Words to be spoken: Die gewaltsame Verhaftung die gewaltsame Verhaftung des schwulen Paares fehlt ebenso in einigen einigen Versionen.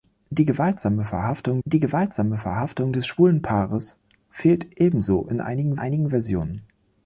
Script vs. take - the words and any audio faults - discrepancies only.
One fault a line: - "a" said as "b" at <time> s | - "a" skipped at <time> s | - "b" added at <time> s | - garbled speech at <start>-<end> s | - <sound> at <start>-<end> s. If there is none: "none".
none